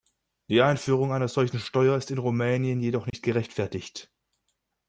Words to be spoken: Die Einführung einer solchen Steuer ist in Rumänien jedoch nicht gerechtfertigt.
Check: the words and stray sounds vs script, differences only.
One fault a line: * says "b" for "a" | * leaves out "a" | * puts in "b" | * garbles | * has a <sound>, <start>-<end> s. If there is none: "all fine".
* has a dropout, 3.1-3.1 s